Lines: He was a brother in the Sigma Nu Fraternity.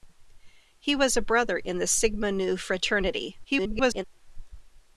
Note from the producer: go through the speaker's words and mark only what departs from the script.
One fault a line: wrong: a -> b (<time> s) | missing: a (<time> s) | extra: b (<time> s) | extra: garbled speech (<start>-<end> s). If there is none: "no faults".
extra: garbled speech (3.4-4.0 s)